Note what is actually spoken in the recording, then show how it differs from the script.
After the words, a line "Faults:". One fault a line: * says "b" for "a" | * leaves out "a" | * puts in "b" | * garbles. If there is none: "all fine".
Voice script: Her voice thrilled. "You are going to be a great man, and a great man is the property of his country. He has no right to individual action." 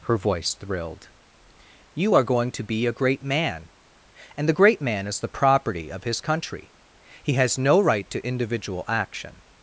Her voice thrilled. "You are going to be a great man, and the great man is the property of his country. He has no right to individual action."
Faults:
* says "the" for "a"